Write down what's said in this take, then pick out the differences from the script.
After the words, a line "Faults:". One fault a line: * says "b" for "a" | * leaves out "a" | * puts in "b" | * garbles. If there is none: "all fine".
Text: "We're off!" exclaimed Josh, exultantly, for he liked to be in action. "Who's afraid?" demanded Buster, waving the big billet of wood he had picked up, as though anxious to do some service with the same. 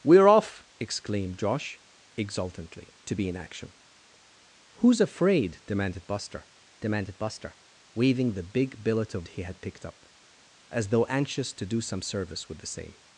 "We're off!" exclaimed Josh, exultantly, to be in action. "Who's afraid?" demanded Buster demanded Buster, waving the big billet of he had picked up, as though anxious to do some service with the same.
Faults:
* leaves out "for he liked"
* puts in "demanded Buster"
* leaves out "wood"